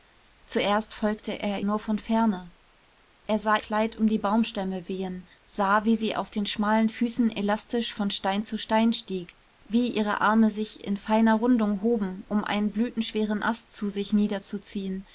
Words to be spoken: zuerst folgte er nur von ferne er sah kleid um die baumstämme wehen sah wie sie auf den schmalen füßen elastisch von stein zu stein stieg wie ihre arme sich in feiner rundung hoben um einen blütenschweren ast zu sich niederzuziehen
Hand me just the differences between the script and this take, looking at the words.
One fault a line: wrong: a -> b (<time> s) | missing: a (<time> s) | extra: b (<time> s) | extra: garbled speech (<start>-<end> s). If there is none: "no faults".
no faults